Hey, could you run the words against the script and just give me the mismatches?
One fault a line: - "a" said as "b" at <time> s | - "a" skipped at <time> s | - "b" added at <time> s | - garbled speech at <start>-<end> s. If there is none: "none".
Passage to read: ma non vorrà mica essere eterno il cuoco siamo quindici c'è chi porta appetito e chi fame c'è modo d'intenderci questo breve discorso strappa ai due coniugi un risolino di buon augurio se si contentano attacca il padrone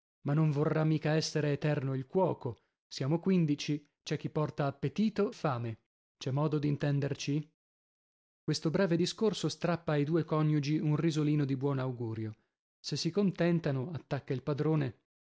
- "e chi" skipped at 5.3 s